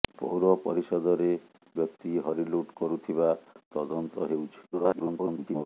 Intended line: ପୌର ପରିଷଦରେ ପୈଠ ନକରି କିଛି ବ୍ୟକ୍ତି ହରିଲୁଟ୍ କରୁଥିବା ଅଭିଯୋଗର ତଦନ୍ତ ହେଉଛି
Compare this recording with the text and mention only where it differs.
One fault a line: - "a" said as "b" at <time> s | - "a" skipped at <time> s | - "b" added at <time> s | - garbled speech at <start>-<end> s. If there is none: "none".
- "ପୈଠ ନକରି କିଛି" skipped at 1.3 s
- "ଅଭିଯୋଗର" skipped at 3.3 s
- garbled speech at 4.7-5.7 s